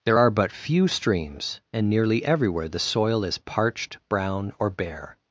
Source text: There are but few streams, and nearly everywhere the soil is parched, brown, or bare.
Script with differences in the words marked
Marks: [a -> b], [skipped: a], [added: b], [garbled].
There are but few streams, and nearly everywhere the soil is parched, brown, or bare.